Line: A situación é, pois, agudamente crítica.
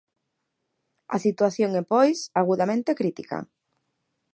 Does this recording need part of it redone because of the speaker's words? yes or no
no